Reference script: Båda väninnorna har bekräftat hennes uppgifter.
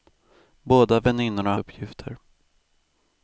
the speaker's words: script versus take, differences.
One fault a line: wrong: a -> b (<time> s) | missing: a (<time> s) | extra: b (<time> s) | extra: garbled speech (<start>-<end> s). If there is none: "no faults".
missing: har bekräftat hennes (1.6 s)